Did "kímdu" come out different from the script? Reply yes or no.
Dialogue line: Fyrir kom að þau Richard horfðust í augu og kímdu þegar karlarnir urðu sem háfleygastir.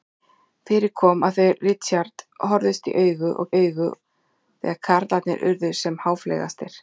yes